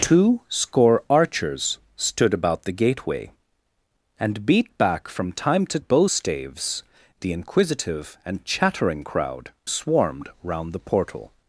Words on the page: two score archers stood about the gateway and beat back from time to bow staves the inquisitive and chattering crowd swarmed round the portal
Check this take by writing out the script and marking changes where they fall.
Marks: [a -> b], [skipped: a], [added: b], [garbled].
two score archers stood about the gateway and beat back from time to bow staves the inquisitive and chattering crowd swarmed round the portal